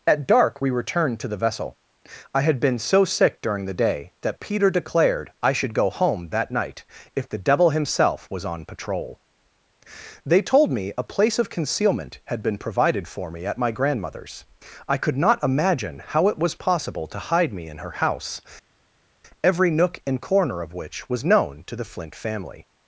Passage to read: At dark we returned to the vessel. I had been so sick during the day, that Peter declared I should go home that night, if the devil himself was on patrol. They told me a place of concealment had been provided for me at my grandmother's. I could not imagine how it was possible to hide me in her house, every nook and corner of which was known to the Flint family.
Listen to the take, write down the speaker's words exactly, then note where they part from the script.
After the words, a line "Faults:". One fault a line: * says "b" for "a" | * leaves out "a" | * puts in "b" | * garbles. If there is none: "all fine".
At dark we returned to the vessel. I had been so sick during the day, that Peter declared I should go home that night, if the devil himself was on patrol. They told me a place of concealment had been provided for me at my grandmother's. I could not imagine how it was possible to hide me in her house, every nook and corner of which was known to the Flint family.
Faults:
all fine